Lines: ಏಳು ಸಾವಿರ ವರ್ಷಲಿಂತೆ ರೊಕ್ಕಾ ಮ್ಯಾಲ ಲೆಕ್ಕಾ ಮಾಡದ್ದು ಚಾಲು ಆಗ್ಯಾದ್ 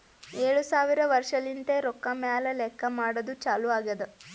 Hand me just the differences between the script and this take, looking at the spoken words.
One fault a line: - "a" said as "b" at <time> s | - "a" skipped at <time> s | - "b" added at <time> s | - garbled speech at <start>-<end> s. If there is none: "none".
none